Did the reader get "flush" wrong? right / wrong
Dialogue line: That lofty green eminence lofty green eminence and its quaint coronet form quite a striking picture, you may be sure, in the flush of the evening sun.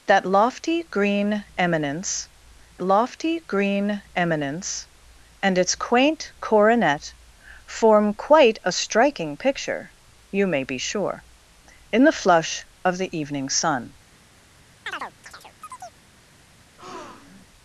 right